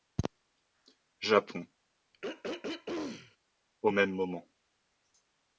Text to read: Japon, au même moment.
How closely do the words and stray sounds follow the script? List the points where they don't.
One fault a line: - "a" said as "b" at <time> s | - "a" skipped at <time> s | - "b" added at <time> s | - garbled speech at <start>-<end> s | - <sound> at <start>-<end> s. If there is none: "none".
- throat clearing at 2.1-3.4 s